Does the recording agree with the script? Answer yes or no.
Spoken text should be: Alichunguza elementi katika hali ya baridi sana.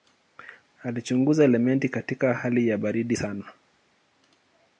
yes